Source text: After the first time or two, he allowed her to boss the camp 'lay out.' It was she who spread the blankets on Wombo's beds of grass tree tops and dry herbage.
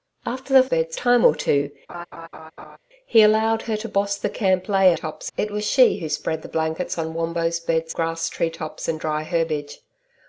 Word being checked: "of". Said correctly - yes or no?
no